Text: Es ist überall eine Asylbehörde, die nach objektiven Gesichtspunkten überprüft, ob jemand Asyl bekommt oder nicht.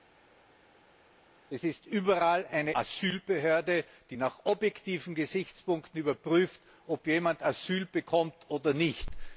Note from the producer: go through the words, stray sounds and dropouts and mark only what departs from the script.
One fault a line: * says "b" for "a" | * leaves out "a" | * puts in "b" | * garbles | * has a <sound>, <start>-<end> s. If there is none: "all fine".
all fine